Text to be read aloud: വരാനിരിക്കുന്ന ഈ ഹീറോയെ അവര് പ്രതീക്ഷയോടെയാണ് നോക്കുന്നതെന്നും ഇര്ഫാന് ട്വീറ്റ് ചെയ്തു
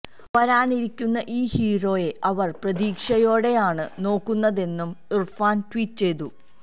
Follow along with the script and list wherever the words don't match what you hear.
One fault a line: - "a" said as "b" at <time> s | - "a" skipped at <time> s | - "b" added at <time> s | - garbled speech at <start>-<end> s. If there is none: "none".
none